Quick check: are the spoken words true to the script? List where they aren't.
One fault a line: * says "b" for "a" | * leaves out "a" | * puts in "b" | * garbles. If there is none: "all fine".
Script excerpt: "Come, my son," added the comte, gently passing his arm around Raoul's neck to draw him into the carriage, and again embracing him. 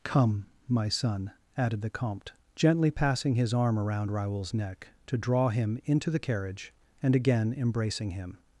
all fine